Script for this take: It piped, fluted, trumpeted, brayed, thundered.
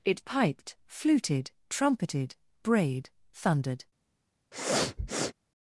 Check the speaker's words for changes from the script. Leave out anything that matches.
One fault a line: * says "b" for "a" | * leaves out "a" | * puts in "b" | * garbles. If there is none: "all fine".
all fine